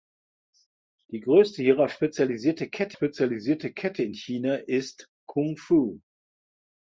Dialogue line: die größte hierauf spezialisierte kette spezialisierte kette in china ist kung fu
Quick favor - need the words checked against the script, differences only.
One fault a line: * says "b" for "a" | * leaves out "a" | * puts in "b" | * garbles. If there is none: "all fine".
all fine